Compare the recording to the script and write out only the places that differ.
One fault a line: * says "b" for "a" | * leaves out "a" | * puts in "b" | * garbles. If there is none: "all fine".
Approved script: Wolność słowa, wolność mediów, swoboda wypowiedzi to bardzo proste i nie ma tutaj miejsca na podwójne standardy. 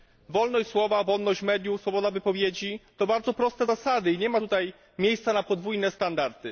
* puts in "zasady"